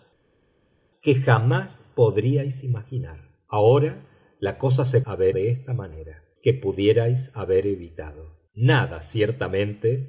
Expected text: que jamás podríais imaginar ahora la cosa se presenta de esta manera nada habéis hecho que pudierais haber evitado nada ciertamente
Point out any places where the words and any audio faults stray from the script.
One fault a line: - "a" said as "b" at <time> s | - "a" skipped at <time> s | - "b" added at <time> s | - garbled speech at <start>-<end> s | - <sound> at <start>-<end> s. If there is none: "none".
- "presenta" said as "haber" at 5.1 s
- "nada habéis hecho" skipped at 6.2 s